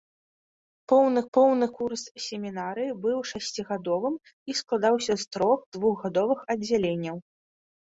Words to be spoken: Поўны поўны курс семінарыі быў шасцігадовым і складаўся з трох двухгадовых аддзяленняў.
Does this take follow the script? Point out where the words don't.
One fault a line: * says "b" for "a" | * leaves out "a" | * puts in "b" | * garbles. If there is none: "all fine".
all fine